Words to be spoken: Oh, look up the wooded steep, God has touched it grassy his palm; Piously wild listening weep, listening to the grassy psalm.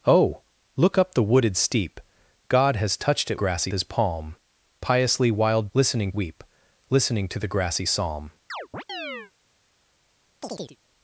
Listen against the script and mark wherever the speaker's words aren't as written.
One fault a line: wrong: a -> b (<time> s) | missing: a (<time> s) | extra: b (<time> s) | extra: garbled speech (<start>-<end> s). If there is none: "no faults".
no faults